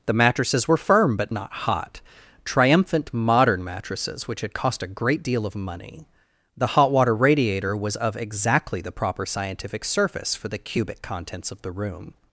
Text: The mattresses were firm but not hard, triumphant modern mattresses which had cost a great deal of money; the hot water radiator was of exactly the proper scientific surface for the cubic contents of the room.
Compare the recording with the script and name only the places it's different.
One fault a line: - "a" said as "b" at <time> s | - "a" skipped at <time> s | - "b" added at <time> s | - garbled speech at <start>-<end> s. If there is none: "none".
- "hard" said as "hot" at 1.5 s